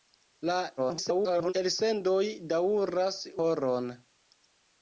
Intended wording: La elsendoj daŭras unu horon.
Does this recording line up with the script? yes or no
no